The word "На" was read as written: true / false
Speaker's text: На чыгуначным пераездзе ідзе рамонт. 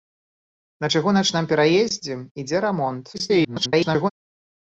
true